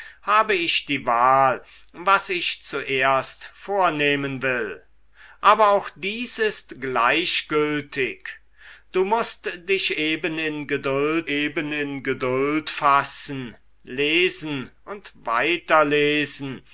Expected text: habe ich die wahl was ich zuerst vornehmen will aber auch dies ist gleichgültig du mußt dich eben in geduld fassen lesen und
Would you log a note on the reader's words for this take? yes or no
yes